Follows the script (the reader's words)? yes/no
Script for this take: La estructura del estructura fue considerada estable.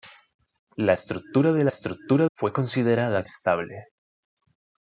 yes